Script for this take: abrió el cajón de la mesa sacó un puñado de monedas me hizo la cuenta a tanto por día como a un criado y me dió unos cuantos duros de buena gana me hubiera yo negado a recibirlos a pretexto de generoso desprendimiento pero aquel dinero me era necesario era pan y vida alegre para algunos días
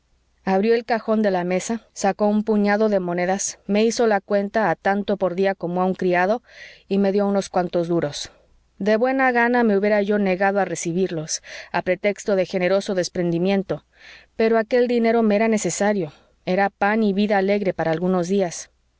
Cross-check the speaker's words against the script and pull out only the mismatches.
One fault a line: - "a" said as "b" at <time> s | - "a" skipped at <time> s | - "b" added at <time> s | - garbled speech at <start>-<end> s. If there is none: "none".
none